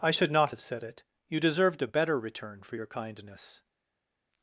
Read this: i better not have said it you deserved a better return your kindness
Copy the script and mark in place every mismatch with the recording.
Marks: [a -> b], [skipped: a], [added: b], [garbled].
i [better -> should] not have said it you deserved a better return [added: for] your kindness